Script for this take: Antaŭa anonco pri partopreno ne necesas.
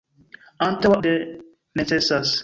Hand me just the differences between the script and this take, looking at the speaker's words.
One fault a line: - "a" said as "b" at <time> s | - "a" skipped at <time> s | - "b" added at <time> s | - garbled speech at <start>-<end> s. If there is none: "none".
- "anonco pri partopreno" skipped at 1.0 s